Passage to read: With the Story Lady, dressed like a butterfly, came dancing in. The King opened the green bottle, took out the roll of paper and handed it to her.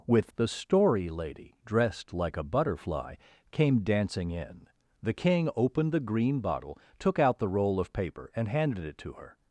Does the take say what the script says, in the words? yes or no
yes